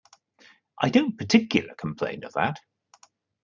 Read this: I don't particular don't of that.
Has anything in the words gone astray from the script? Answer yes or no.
yes